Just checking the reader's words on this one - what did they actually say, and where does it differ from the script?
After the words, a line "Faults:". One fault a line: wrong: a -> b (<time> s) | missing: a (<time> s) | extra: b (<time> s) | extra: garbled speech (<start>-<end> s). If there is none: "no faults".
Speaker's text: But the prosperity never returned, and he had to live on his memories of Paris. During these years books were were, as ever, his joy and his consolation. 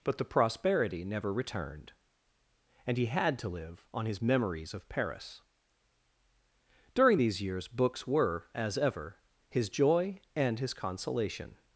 But the prosperity never returned, and he had to live on his memories of Paris. During these years books were, as ever, his joy and his consolation.
Faults:
missing: were (8.5 s)